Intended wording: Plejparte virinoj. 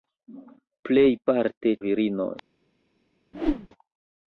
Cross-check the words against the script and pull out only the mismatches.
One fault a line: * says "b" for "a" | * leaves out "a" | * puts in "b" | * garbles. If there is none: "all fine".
all fine